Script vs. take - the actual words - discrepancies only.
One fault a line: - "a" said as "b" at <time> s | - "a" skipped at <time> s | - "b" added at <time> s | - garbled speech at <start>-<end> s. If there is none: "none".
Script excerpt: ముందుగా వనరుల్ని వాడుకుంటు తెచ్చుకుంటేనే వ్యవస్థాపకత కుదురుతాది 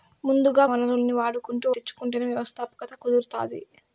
none